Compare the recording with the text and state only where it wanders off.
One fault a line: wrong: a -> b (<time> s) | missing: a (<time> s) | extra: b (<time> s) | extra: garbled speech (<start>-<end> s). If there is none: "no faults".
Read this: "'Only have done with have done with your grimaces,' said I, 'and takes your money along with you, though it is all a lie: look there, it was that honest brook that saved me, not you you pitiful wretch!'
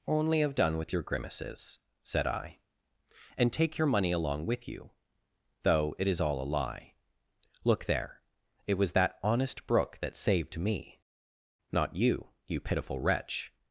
missing: have done with (0.9 s)
wrong: takes -> take (3.5 s)